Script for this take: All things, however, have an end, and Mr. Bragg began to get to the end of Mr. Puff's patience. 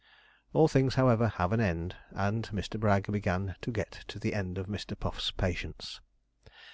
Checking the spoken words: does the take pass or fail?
pass